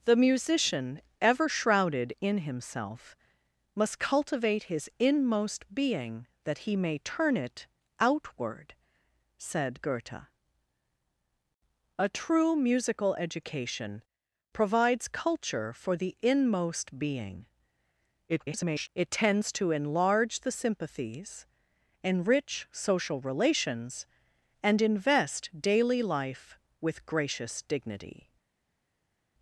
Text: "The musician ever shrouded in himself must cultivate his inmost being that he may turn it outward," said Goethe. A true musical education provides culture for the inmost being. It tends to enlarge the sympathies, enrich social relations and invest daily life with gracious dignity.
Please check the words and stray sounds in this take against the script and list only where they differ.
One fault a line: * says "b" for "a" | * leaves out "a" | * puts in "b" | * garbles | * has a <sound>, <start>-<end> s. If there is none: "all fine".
* garbles